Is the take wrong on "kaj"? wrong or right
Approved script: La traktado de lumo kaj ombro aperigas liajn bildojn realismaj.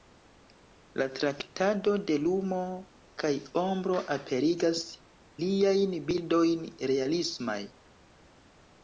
right